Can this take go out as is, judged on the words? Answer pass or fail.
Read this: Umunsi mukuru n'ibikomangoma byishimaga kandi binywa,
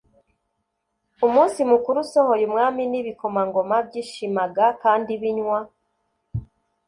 fail